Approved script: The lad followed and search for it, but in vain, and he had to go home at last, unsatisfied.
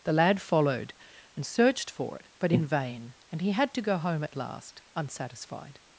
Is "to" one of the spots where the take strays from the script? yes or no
no